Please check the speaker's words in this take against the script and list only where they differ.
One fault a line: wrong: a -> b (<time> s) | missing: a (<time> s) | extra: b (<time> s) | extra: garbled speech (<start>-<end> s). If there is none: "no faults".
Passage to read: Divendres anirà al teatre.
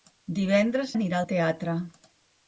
no faults